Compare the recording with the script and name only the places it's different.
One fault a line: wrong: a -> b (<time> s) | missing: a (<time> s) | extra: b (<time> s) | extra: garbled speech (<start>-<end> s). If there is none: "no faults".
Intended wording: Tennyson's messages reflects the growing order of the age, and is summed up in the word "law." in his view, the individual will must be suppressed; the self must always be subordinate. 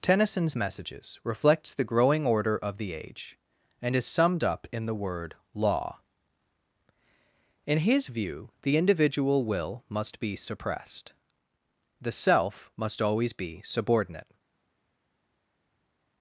no faults